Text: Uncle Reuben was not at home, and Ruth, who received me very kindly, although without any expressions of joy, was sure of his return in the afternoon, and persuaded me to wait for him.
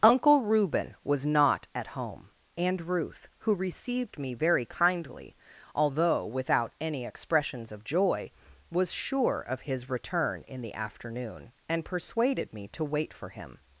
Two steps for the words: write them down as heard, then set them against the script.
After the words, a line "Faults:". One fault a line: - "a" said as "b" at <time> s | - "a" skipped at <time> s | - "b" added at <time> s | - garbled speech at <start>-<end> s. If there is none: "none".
Uncle Reuben was not at home, and Ruth, who received me very kindly, although without any expressions of joy, was sure of his return in the afternoon, and persuaded me to wait for him.
Faults:
none